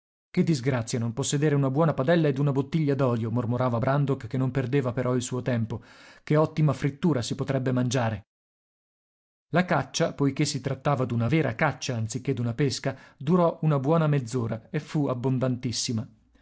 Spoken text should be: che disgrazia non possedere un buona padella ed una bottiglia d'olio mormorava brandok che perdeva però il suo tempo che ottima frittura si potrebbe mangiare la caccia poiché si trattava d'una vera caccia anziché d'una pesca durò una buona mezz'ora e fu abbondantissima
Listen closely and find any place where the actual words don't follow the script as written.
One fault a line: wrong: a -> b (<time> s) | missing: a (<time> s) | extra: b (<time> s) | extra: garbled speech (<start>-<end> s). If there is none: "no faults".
wrong: un -> una (1.5 s)
extra: non (4.4 s)